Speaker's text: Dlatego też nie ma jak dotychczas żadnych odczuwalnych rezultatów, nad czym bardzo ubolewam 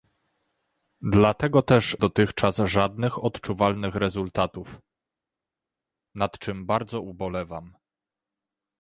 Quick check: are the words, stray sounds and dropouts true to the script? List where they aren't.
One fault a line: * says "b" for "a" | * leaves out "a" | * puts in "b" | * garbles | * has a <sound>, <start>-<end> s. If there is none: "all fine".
* leaves out "nie ma jak"